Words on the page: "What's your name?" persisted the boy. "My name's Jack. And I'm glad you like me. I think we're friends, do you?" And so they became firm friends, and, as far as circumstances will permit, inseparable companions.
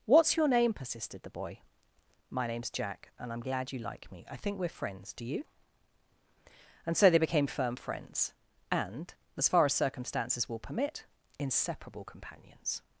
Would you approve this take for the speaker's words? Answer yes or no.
yes